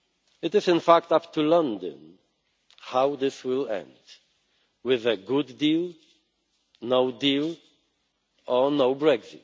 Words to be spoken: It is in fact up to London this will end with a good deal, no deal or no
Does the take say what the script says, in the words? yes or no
no